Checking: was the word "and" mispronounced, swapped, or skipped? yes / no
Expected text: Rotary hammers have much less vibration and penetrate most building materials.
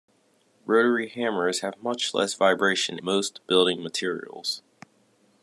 yes